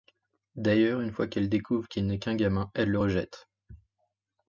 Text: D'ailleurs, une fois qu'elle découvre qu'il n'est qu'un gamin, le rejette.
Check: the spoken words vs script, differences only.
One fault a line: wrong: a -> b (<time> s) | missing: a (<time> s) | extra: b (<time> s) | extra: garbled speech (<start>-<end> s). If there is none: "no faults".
extra: elle (2.7 s)